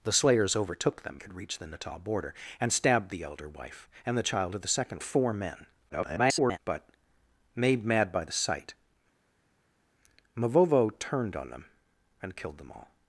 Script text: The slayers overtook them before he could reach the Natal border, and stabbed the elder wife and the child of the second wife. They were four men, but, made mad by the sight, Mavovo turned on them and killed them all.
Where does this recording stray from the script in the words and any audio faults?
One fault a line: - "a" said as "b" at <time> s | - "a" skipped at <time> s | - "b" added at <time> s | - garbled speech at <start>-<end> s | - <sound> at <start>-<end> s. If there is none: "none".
- "before he" skipped at 1.2 s
- "wife They were" skipped at 5.0 s
- garbled speech at 5.9-6.6 s